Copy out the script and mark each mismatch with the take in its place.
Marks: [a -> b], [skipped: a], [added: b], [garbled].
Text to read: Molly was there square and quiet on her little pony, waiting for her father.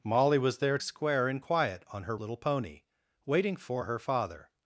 Molly was there square and quiet on her little pony, waiting for her father.